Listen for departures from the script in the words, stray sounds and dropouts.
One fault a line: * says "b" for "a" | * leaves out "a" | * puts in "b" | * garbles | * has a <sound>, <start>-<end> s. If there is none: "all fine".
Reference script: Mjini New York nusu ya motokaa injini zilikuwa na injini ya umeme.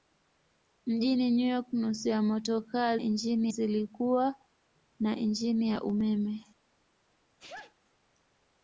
* has a sneeze, 7.4-7.7 s